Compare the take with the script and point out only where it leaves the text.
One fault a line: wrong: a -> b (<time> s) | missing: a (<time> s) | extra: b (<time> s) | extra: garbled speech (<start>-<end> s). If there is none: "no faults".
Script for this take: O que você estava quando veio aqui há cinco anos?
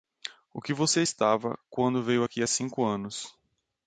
no faults